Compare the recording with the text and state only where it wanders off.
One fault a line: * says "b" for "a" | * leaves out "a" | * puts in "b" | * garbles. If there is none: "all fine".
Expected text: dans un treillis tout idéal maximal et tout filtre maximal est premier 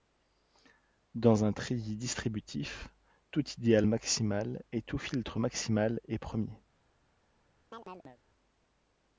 * puts in "distributif"